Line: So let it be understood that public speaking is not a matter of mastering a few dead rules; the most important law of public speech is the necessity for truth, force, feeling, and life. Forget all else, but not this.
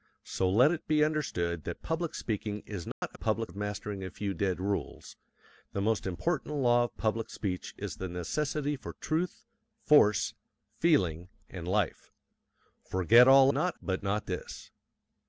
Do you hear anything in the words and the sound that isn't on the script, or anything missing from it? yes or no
yes